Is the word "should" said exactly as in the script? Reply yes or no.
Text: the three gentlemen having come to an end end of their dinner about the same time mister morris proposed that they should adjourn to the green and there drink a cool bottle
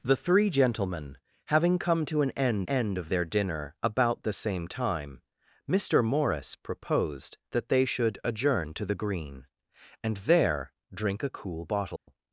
yes